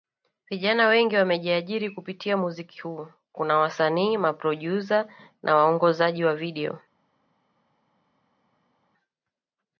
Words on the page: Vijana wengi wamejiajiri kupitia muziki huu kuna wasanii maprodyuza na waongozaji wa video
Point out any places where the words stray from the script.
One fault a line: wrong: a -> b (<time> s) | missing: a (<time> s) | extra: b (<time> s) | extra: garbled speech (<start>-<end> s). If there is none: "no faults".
no faults